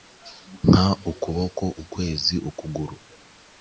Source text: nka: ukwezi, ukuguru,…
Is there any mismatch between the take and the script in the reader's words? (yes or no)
yes